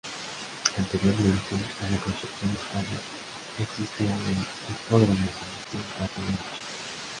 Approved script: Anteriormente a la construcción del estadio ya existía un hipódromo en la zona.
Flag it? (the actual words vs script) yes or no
yes